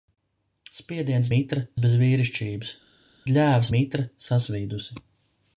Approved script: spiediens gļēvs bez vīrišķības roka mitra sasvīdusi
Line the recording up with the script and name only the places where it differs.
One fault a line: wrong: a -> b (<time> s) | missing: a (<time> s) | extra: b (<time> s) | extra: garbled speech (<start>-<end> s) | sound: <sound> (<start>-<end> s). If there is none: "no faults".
wrong: gļēvs -> mitra (1.3 s)
wrong: roka -> gļēvs (3.3 s)